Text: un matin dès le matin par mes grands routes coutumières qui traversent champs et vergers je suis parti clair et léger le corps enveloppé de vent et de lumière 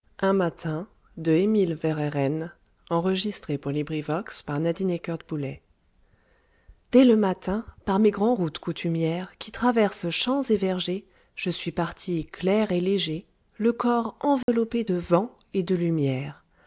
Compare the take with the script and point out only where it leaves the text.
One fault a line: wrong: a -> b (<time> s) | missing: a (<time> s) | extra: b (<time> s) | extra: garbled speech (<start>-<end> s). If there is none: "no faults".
no faults